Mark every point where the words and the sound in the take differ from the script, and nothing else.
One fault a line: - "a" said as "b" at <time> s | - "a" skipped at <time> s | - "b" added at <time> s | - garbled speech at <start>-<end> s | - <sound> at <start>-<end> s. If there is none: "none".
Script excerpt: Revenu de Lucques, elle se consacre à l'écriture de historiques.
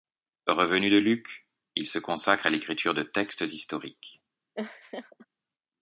- "elle" said as "il" at 1.8 s
- "textes" added at 3.0 s
- laugh at 4.5-5.3 s